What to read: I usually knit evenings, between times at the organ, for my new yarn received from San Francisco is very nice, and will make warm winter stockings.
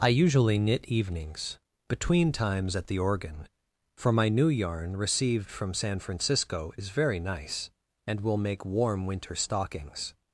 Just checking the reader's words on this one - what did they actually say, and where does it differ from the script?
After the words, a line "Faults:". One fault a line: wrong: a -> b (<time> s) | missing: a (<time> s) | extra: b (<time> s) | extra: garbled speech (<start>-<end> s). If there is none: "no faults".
I usually knit evenings, between times at the organ, for my new yarn received from San Francisco is very nice, and will make warm winter stockings.
Faults:
no faults